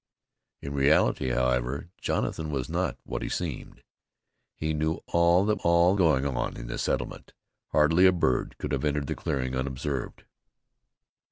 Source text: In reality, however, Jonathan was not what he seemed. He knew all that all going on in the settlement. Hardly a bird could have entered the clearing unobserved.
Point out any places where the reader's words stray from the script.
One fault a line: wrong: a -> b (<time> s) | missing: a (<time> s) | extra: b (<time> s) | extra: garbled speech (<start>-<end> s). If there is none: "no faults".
no faults